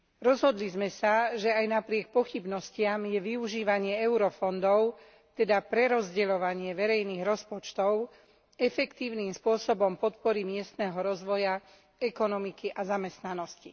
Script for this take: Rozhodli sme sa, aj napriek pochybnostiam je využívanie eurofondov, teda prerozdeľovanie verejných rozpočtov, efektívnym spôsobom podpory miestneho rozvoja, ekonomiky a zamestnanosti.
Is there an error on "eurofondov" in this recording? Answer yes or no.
no